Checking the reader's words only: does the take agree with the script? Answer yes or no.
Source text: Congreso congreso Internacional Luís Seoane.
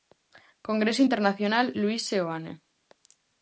no